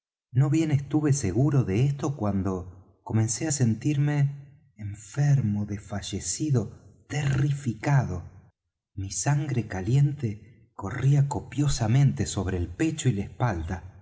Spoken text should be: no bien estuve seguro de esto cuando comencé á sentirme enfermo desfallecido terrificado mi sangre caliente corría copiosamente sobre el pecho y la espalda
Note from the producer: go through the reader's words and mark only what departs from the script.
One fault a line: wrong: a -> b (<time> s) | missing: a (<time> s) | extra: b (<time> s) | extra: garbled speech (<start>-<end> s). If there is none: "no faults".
no faults